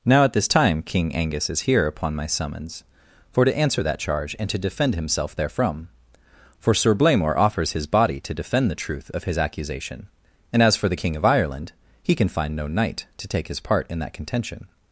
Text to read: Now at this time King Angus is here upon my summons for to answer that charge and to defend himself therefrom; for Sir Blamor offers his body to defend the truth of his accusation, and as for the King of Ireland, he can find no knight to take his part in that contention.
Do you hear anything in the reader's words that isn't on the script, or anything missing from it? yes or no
no